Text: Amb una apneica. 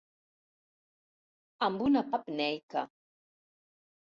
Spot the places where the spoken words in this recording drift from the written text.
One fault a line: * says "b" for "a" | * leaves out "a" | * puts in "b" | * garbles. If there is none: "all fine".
all fine